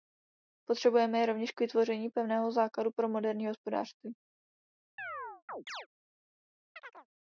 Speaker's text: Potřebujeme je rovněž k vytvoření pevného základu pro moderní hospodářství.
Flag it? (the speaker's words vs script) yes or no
no